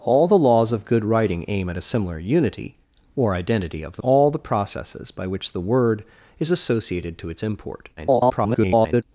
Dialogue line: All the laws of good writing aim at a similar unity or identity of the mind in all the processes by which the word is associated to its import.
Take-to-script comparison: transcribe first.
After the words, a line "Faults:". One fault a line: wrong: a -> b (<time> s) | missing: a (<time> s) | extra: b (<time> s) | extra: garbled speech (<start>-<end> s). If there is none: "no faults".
All the laws of good writing aim at a similar unity or identity of the all the processes by which the word is associated to its import. [garbled]
Faults:
missing: mind in (4.0 s)
extra: garbled speech (8.0-9.0 s)